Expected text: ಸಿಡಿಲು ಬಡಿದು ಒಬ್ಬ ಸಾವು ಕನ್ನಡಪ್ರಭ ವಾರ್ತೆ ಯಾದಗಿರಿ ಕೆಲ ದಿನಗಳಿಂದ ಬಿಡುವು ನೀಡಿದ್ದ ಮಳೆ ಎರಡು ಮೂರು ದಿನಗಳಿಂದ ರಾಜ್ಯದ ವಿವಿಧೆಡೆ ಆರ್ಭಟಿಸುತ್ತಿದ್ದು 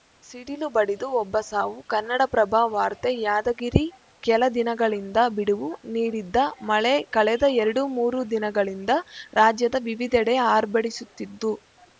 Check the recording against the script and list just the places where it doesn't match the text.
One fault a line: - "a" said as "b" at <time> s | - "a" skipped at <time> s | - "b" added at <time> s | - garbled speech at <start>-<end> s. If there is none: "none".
- "ಕಳೆದ" added at 7.2 s